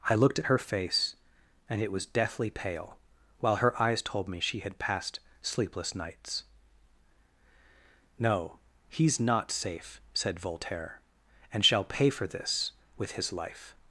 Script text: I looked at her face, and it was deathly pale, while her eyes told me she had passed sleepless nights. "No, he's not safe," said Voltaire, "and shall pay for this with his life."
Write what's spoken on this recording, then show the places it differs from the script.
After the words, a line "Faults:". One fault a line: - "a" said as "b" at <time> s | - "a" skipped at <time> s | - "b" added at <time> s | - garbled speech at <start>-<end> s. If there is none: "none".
I looked at her face, and it was deathly pale, while her eyes told me she had passed sleepless nights. "No, he's not safe," said Voltaire, "and shall pay for this with his life."
Faults:
none